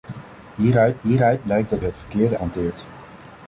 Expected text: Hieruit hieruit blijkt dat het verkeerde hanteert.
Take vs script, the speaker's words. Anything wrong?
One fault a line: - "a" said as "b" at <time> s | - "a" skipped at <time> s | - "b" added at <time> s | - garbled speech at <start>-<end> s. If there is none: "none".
none